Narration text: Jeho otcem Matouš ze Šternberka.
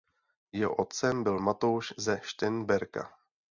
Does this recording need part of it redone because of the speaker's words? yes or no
yes